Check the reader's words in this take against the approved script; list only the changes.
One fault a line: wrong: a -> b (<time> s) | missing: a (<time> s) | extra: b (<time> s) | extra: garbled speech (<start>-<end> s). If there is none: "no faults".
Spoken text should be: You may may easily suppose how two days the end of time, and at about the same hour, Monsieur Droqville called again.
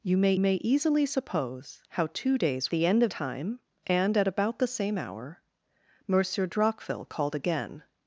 no faults